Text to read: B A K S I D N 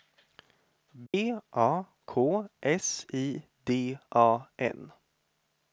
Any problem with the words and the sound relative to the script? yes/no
yes